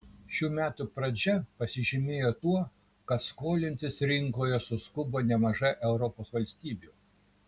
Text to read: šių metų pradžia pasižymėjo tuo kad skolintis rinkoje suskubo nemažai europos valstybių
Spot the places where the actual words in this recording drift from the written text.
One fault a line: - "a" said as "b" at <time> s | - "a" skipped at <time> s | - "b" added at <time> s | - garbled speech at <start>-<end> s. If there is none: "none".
none